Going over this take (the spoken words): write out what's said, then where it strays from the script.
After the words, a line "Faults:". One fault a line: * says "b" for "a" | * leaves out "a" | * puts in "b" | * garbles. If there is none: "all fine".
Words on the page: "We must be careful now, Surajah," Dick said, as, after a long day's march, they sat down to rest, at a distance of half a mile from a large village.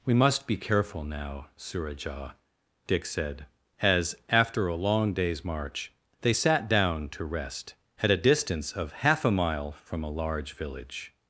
"We must be careful now, Surajah," Dick said, as, after a long day's march, they sat down to rest, at a distance of half a mile from a large village.
Faults:
all fine